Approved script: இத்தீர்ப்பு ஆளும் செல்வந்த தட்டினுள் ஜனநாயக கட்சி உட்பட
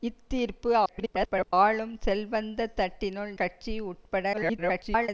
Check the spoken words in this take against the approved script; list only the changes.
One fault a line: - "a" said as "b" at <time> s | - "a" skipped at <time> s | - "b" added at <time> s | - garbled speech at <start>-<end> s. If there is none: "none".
- garbled speech at 0.9-1.5 s
- "ஜனநாயக" skipped at 3.3 s
- garbled speech at 4.3-5.1 s